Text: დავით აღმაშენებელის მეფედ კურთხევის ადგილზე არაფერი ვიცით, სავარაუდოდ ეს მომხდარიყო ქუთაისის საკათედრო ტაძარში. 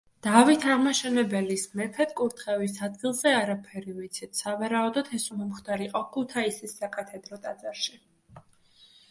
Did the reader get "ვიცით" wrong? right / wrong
right